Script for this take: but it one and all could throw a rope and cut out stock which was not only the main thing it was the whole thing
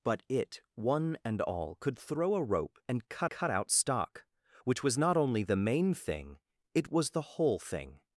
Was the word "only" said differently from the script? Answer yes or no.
no